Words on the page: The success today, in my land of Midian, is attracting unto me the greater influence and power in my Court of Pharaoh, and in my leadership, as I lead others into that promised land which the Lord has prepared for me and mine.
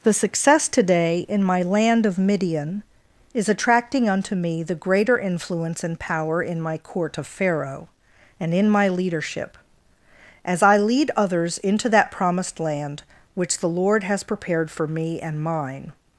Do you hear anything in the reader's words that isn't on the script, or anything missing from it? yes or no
no